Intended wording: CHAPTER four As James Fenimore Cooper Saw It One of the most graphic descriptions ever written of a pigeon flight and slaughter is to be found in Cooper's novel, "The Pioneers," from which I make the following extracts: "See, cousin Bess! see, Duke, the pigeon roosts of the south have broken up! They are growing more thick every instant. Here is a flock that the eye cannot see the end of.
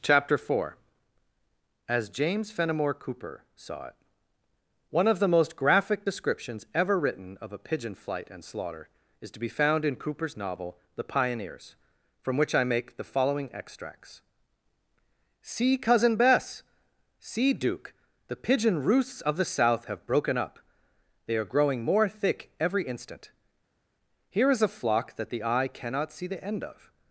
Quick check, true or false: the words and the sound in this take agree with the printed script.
true